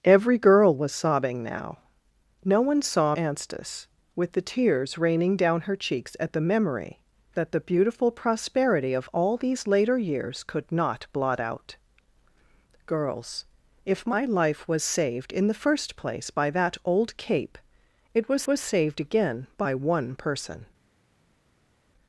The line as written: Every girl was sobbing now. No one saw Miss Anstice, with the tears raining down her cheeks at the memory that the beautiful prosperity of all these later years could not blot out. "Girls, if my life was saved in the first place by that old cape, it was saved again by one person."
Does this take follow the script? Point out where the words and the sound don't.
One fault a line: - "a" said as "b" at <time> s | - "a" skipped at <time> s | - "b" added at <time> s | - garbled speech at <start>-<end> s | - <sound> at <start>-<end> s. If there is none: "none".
- "Miss" skipped at 3.1 s
- "was" added at 18.5 s